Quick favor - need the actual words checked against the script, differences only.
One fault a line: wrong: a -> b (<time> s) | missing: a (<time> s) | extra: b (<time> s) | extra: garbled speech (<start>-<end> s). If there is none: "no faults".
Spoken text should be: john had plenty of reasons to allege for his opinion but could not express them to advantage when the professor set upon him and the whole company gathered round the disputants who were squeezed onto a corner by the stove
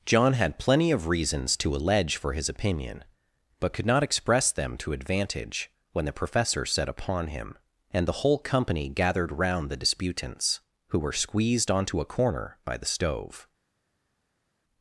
no faults